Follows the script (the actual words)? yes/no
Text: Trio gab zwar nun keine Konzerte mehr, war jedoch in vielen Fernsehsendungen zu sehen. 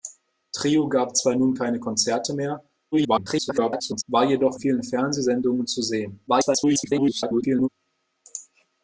no